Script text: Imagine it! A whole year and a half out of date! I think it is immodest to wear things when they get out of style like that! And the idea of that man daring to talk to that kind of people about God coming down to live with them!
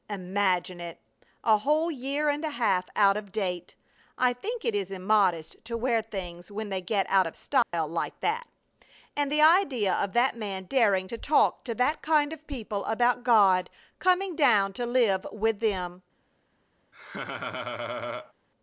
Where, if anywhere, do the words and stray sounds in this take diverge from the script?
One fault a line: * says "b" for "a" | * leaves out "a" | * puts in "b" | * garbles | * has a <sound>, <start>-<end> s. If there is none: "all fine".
* has a dropout, 7.6-7.7 s
* has a laugh, 16.9-18.3 s